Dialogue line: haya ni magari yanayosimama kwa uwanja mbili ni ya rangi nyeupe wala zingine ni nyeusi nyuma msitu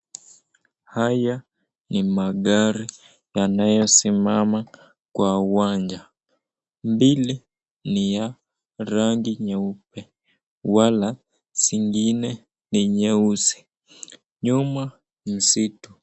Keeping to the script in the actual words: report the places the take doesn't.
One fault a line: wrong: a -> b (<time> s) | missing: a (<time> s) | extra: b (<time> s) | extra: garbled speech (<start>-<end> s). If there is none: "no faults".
no faults